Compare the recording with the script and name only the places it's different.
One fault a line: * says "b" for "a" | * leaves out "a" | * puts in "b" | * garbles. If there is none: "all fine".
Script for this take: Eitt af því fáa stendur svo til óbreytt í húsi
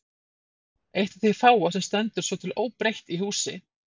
* puts in "sem"